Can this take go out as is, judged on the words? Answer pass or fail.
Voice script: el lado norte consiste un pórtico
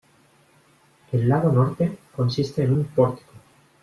fail